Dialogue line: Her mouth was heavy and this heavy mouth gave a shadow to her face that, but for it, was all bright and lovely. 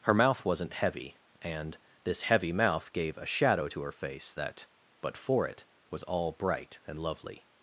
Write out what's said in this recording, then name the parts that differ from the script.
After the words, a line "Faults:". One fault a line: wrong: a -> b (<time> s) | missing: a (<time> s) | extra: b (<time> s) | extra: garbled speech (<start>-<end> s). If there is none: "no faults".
Her mouth wasn't heavy and this heavy mouth gave a shadow to her face that, but for it, was all bright and lovely.
Faults:
wrong: was -> wasn't (0.5 s)